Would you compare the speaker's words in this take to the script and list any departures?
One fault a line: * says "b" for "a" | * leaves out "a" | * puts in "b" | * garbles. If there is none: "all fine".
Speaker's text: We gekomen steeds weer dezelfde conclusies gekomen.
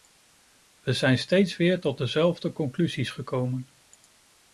* says "zijn" for "gekomen"
* puts in "tot"